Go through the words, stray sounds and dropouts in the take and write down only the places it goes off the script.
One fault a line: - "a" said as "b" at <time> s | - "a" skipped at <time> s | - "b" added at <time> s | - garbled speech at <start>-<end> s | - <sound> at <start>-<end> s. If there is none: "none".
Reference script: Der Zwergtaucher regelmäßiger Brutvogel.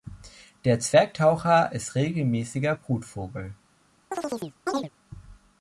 - "ist" added at 1.7 s
- chirp at 4.1-4.9 s